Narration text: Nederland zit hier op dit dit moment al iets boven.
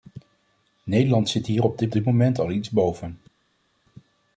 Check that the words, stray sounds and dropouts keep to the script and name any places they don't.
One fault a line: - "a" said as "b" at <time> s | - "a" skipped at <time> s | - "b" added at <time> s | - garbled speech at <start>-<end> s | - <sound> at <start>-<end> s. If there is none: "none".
none